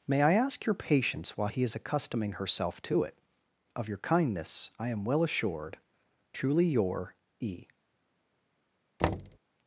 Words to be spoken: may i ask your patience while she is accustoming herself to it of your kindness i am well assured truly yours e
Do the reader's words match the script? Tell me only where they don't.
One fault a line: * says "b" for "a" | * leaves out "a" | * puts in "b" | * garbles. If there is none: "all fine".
* says "he" for "she"
* says "your" for "yours"